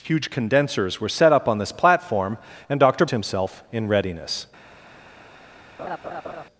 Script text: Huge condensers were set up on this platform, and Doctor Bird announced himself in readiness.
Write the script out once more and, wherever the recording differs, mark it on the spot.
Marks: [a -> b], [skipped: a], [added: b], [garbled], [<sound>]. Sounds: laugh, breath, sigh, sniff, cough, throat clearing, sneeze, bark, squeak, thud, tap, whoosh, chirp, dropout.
Huge condensers were set up on this platform, and Doctor [skipped: Bird announced] himself in readiness. [laugh]